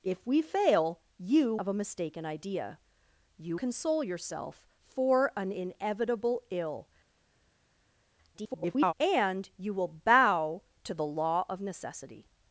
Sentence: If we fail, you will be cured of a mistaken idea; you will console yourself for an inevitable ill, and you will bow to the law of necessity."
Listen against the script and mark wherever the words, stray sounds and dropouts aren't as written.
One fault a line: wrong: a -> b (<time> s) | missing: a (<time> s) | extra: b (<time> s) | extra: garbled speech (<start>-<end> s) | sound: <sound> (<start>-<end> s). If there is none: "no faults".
missing: will be cured (1.6 s)
missing: will (3.6 s)
extra: garbled speech (8.3-8.9 s)